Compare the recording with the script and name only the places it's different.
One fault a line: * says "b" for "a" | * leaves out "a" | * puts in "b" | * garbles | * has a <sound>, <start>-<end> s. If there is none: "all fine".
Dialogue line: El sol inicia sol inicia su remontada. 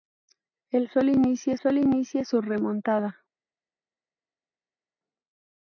all fine